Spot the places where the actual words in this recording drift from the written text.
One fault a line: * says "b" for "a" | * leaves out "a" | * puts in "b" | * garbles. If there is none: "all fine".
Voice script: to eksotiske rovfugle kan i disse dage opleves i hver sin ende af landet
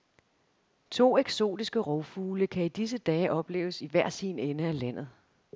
all fine